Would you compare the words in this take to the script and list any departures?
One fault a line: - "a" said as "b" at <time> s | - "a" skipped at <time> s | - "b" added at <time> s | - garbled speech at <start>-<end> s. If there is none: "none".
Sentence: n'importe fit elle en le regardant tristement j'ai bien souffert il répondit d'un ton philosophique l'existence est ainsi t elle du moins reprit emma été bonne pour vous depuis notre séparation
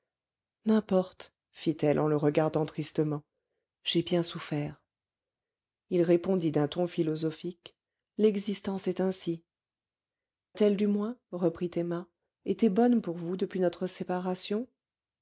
none